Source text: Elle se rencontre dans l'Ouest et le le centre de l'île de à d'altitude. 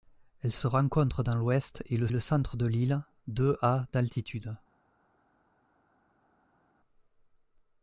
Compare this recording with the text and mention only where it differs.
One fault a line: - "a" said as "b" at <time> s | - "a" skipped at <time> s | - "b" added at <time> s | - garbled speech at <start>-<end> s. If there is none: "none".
none